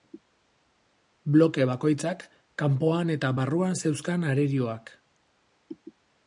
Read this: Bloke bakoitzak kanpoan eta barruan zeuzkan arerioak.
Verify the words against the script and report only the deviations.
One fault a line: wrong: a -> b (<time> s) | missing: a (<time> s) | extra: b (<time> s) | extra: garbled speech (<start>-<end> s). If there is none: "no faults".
no faults